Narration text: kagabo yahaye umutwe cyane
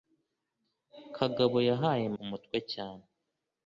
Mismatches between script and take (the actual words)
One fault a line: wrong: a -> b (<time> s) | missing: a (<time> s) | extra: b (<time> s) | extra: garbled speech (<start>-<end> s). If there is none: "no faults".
no faults